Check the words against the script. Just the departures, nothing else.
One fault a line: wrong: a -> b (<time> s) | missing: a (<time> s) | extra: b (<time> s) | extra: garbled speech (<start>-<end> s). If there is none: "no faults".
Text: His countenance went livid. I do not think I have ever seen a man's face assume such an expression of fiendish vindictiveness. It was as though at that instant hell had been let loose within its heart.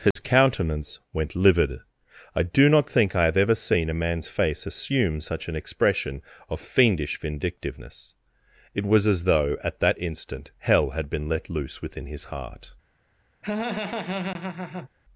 wrong: its -> his (12.1 s)